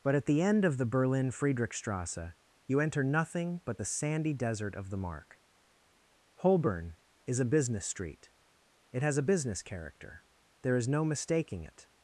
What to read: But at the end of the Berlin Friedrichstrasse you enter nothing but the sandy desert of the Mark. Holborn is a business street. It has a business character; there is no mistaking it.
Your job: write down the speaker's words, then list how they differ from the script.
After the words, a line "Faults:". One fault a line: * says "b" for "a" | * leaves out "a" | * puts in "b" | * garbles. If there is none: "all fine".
But at the end of the Berlin Friedrichstrasse you enter nothing but the sandy desert of the Mark. Holborn is a business street. It has a business character; there is no mistaking it.
Faults:
all fine